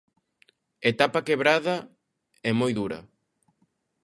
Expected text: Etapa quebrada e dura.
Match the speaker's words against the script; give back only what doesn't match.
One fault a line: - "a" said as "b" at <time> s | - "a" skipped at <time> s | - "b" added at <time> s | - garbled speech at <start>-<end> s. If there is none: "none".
- "moi" added at 2.6 s